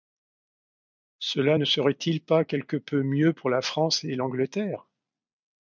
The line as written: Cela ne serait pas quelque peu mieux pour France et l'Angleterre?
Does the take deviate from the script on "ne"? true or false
false